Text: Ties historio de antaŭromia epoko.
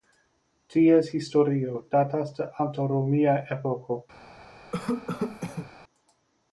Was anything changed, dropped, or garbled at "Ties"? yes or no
no